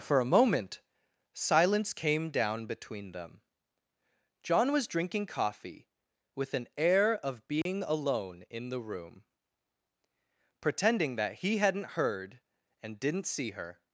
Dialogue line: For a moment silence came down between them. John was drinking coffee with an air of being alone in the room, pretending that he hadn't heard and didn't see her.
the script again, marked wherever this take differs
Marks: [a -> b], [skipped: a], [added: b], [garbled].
For a moment silence came down between them. John was drinking coffee with an air of being alone in the room, pretending that he hadn't heard and didn't see her.